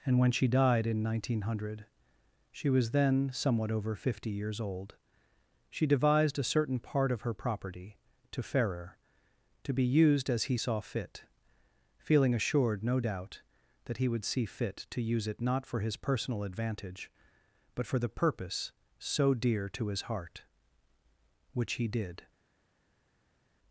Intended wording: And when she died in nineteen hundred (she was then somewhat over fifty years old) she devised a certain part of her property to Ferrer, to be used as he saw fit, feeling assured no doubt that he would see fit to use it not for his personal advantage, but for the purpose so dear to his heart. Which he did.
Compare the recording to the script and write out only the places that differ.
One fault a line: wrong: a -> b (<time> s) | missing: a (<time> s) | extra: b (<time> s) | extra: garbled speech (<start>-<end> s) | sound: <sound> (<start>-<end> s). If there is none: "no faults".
no faults